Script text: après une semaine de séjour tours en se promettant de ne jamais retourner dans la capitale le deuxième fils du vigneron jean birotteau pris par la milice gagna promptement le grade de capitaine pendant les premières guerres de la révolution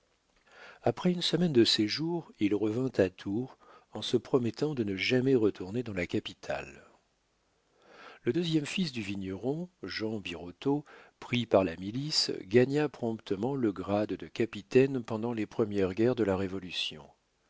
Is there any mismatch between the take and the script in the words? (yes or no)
yes